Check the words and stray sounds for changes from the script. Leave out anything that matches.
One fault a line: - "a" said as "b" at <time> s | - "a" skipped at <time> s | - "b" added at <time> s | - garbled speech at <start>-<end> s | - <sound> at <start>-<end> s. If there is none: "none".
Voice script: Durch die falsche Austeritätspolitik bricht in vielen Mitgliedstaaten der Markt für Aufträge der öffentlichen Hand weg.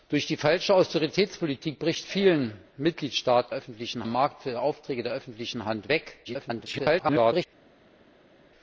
- "in" skipped at 2.0 s
- "der" said as "öffentlichen" at 3.5 s
- garbled speech at 6.2-7.5 s